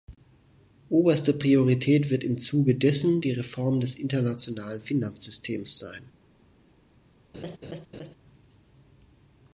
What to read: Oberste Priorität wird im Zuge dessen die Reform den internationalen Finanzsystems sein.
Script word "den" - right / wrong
wrong